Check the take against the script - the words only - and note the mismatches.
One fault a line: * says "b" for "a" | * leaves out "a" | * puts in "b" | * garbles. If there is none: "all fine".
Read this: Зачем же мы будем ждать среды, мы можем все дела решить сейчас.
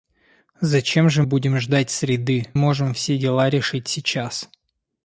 * leaves out "мы"
* leaves out "мы"